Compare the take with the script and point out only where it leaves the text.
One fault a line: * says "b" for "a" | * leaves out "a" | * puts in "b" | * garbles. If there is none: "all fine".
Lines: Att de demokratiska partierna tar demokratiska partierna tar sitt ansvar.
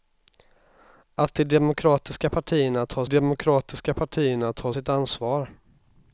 all fine